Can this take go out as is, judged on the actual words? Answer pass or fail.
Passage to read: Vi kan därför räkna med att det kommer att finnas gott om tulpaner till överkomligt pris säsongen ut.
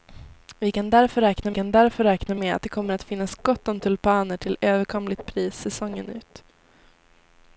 fail